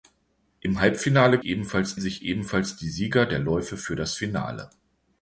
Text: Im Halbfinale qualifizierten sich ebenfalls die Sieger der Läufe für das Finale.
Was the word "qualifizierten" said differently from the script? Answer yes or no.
yes